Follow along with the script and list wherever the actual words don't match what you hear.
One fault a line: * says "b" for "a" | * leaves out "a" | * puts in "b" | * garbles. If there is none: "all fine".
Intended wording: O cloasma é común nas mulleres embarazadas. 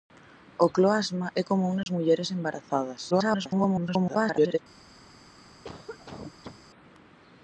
* garbles